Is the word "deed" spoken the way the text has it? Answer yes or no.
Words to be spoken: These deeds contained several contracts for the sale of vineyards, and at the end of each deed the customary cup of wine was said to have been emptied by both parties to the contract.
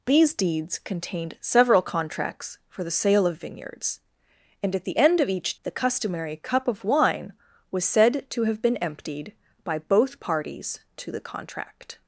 no